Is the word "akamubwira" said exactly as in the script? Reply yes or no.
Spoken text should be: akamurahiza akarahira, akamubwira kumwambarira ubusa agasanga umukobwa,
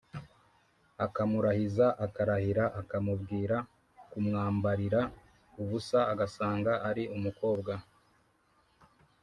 yes